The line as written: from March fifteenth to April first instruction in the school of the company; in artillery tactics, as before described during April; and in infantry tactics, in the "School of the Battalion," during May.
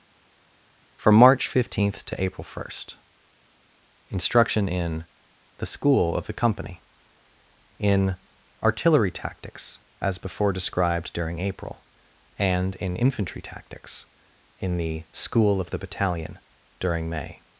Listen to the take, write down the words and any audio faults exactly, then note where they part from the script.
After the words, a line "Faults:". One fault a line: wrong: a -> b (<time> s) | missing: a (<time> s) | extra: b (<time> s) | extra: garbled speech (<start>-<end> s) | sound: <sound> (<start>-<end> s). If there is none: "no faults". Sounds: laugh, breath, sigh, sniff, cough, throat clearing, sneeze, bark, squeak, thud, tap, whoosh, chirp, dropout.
from March fifteenth to April first instruction in the school of the company; in artillery tactics, as before described during April; and in infantry tactics, in the "School of the Battalion," during May.
Faults:
no faults